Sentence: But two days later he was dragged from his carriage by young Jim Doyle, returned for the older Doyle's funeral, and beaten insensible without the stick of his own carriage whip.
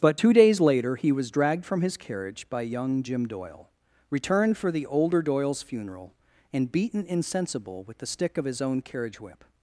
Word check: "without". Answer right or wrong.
wrong